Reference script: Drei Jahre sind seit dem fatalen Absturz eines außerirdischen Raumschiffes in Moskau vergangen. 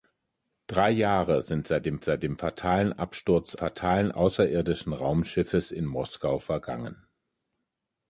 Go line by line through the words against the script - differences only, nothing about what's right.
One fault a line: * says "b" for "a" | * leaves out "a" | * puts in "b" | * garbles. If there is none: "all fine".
* puts in "seit dem"
* says "fatalen" for "eines"